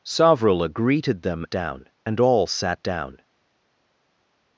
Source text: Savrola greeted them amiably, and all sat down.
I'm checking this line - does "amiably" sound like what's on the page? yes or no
no